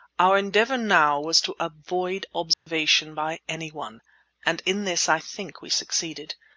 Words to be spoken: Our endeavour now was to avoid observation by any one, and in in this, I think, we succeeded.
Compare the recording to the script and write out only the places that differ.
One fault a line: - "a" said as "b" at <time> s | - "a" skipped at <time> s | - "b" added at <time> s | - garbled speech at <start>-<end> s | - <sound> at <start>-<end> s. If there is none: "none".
- dropout at 2.5-2.7 s
- "in" skipped at 4.8 s